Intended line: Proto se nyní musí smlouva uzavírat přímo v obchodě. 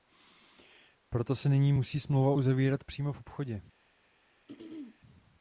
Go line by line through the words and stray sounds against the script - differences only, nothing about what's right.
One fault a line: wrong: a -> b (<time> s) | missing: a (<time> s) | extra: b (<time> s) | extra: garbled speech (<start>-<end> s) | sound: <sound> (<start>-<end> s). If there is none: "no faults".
sound: throat clearing (4.5-5.0 s)